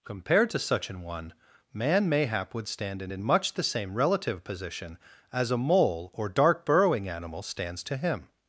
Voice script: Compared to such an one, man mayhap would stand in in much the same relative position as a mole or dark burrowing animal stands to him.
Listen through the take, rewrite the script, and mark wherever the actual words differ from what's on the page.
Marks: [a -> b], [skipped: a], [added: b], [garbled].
Compared to such an one, man mayhap would stand in in much the same relative position as a mole or dark burrowing animal stands to him.